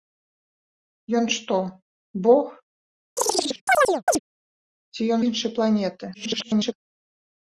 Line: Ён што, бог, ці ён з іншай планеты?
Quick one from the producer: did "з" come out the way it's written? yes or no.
no